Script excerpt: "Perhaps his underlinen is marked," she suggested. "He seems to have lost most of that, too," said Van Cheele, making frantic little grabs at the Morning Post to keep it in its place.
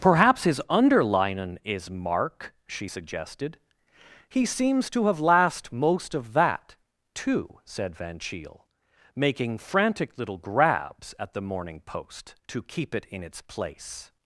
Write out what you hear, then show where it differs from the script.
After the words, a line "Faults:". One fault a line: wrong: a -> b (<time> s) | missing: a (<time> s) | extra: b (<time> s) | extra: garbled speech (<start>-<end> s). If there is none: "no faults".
"Perhaps his underlinen is mark," she suggested. "He seems to have last most of that, too," said Van Cheele, making frantic little grabs at the Morning Post to keep it in its place.
Faults:
wrong: marked -> mark (1.9 s)
wrong: lost -> last (5.2 s)